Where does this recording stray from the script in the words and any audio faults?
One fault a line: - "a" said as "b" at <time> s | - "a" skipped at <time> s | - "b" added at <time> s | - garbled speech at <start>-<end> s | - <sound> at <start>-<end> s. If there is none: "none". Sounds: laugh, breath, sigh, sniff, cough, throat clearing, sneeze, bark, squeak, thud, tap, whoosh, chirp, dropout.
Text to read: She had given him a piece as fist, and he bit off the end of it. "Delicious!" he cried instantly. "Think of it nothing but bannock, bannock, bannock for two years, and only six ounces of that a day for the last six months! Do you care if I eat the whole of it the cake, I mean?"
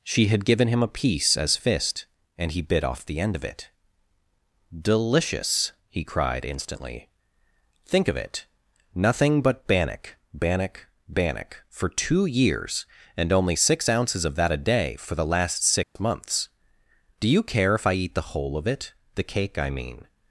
- dropout at 15.8-16.0 s